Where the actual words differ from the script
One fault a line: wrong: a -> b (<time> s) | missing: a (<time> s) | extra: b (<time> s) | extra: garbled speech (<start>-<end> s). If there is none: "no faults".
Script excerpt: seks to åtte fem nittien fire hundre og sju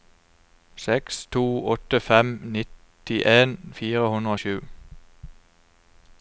no faults